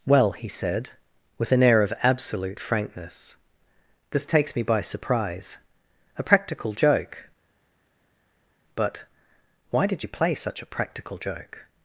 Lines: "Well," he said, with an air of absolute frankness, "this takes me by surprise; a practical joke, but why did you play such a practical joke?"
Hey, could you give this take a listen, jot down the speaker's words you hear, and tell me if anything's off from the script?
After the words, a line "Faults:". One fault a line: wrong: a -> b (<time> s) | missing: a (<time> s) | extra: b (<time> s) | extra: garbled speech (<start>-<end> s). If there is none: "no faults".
"Well," he said, with an air of absolute frankness, "this takes me by surprise; a practical joke, but why did you play such a practical joke?"
Faults:
no faults